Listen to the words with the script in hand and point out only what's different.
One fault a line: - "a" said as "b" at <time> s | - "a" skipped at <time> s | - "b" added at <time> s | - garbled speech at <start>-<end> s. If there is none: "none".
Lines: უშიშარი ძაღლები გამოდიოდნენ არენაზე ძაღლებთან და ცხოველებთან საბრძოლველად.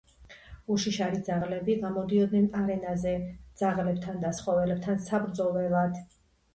none